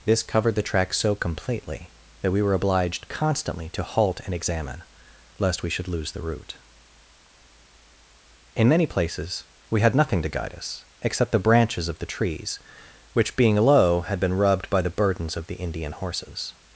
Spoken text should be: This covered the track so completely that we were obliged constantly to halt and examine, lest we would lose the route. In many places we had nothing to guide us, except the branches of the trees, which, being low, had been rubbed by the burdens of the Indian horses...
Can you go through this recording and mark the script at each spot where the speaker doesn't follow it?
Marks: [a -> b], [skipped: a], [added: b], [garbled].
This covered the track so completely that we were obliged constantly to halt and examine, lest we [would -> should] lose the route. In many places we had nothing to guide us, except the branches of the trees, which, being low, had been rubbed by the burdens of the Indian horses...